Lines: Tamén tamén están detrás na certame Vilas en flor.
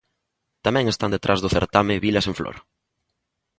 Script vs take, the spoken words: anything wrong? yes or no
yes